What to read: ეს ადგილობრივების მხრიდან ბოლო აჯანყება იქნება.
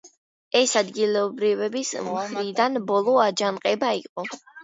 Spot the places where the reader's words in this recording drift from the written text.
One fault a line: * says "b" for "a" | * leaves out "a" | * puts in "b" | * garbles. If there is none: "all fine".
* says "იყო" for "იქნება"